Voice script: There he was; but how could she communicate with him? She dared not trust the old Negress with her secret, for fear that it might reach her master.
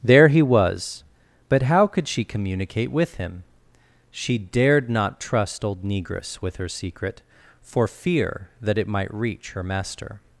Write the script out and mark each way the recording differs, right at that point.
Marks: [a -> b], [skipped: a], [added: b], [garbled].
There he was; but how could she communicate with him? She dared not trust [skipped: the] old Negress with her secret, for fear that it might reach her master.